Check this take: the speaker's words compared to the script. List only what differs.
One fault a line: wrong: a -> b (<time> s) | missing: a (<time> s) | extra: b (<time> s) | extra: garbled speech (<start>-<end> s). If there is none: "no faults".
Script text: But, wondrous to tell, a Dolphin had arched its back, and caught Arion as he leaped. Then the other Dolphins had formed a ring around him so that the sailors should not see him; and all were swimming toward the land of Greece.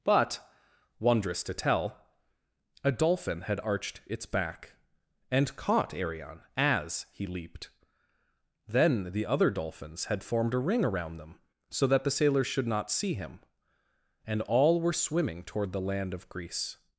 wrong: him -> them (11.2 s)